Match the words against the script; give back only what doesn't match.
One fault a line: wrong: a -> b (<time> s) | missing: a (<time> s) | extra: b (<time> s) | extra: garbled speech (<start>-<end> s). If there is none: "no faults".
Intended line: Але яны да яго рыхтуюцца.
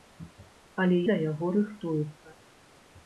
missing: яны (1.0 s)